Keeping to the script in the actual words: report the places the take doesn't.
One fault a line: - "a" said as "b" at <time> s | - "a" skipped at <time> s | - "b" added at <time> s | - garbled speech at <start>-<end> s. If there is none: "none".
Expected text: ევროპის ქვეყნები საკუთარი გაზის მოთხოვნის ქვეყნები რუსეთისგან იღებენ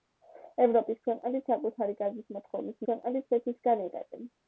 none